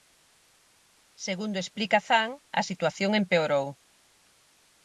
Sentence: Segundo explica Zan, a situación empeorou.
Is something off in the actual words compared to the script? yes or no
no